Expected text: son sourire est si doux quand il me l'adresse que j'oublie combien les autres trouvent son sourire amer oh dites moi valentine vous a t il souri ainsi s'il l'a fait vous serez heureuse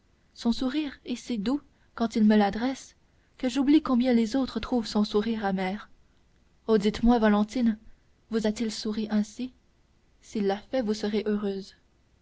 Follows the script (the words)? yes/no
yes